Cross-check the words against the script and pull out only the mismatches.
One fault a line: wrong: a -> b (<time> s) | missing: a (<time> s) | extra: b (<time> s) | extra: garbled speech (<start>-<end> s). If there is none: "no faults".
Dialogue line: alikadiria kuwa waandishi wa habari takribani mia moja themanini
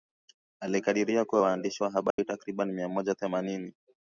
no faults